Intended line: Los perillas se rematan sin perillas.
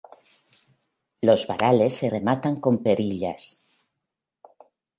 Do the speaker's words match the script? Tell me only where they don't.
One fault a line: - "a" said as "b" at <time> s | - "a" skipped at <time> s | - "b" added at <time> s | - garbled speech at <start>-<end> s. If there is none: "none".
- "perillas" said as "varales" at 1.4 s
- "sin" said as "con" at 2.6 s